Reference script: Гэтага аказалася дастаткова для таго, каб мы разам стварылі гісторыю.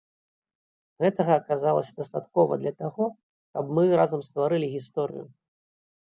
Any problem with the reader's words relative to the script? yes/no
no